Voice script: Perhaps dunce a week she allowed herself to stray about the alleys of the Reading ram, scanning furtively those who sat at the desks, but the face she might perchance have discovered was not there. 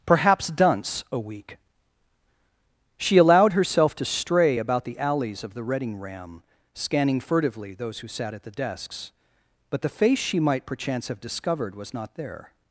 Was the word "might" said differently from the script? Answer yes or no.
no